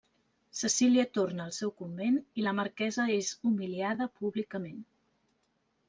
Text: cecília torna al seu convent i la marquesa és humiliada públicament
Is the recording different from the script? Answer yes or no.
no